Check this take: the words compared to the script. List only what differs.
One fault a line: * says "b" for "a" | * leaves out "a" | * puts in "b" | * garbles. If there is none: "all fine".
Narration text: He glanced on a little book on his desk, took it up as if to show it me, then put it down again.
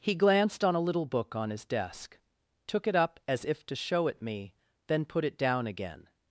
all fine